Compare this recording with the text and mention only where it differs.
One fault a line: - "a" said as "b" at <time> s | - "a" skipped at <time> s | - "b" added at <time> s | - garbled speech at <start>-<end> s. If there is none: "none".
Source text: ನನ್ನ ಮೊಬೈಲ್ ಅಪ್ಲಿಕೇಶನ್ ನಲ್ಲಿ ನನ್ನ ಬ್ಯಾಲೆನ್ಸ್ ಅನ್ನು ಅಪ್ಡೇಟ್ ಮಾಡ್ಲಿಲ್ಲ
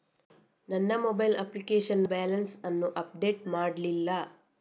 - "ನಲ್ಲಿ ನನ್ನ" skipped at 2.0 s